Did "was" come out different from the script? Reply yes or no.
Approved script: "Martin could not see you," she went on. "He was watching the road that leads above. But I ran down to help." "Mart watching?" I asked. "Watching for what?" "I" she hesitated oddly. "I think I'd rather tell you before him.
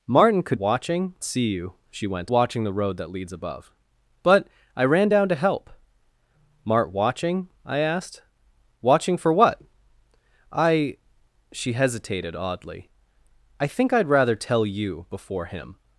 yes